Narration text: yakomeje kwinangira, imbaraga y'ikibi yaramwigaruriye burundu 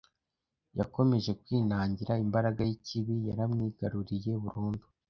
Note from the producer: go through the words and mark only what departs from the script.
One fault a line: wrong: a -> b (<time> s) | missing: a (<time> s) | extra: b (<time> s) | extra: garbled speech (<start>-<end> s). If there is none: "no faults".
no faults